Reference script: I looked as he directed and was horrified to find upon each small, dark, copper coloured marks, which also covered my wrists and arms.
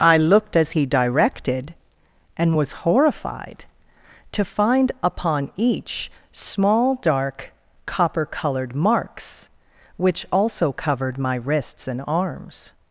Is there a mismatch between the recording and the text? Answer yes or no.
no